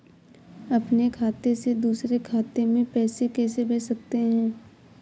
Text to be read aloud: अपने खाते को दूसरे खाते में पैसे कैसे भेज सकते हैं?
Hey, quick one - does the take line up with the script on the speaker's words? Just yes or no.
no